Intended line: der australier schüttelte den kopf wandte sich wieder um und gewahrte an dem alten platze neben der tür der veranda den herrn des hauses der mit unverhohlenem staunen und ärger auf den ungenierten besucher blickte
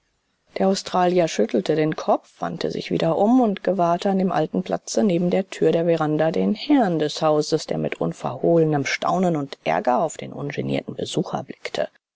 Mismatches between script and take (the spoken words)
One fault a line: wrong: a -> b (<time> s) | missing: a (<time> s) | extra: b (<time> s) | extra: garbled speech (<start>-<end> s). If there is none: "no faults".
no faults